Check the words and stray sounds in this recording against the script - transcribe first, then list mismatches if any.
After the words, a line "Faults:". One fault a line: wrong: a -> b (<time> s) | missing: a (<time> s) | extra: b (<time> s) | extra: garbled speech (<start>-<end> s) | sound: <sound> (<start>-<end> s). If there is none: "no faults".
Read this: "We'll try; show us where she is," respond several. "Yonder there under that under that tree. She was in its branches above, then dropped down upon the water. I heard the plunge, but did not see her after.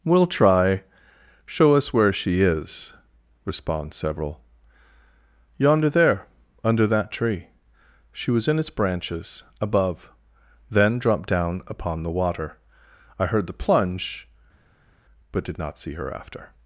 "We'll try; show us where she is," respond several. "Yonder there under that tree. She was in its branches above, then dropped down upon the water. I heard the plunge, but did not see her after.
Faults:
missing: under that (7.1 s)